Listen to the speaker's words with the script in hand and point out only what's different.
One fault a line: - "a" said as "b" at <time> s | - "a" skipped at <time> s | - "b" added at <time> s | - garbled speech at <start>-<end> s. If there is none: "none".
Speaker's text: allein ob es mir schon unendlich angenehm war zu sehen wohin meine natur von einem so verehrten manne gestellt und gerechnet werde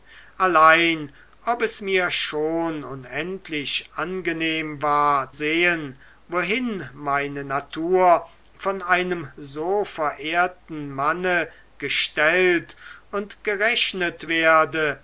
- "zu" skipped at 5.3 s